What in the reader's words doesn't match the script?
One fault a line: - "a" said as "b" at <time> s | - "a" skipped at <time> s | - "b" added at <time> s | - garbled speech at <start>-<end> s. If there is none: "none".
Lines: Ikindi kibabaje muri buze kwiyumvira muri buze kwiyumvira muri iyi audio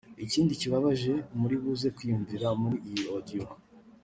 - "buze kwiyumvira muri" skipped at 2.8 s